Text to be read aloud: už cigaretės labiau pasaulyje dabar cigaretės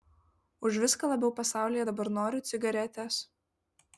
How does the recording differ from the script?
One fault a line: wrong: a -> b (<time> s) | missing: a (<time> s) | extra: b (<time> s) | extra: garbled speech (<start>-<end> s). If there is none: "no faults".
wrong: cigaretės -> viską (0.8 s)
extra: noriu (2.2 s)